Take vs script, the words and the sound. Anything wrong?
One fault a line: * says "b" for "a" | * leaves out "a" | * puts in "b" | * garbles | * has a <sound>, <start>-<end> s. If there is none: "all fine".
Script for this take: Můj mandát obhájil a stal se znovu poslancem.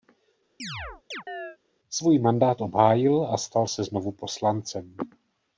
* has a chirp, 0.6-1.6 s
* says "Svůj" for "Můj"